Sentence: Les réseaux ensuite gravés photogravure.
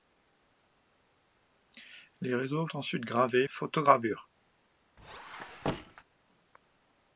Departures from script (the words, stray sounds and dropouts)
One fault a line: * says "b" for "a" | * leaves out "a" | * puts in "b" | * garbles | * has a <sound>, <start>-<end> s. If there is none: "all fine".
* has a squeak, 5.0-6.0 s